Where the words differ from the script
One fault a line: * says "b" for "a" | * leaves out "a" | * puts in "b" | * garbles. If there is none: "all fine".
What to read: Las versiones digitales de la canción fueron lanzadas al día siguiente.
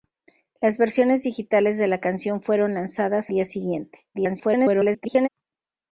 * leaves out "al"
* garbles